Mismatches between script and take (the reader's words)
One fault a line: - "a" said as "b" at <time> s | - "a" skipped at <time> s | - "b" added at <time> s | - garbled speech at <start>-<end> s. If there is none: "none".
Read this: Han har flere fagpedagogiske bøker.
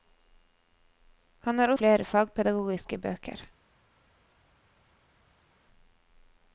none